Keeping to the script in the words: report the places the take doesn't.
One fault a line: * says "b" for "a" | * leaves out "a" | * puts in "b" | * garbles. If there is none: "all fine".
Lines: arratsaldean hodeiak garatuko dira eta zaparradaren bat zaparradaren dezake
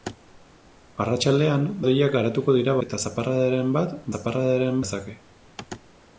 all fine